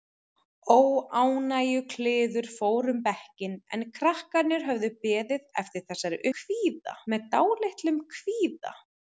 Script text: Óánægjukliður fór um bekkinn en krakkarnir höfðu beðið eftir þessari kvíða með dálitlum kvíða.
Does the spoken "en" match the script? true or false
true